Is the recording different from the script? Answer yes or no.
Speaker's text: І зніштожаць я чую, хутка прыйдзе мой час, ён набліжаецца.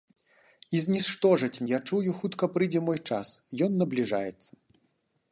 no